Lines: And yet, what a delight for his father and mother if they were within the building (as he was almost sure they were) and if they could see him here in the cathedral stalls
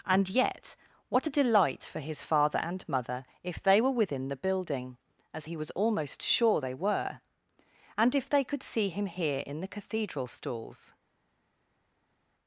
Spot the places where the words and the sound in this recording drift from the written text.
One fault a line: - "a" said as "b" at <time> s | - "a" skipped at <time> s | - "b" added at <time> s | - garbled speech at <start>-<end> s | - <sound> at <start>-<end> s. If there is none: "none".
none